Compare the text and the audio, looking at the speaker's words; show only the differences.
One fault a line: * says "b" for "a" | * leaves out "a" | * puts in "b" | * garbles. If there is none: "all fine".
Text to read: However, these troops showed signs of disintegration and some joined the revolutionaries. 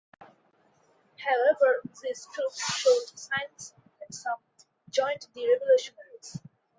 * leaves out "of disintegration"